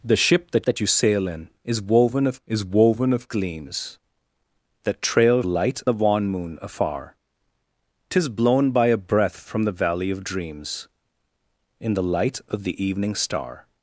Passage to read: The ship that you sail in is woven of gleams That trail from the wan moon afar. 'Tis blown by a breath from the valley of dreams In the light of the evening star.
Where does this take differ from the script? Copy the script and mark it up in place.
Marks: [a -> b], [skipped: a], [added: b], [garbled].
The ship that [added: that] you sail in is woven of [added: is woven of] gleams That trail [from -> light] the wan moon afar. 'Tis blown by a breath from the valley of dreams In the light of the evening star.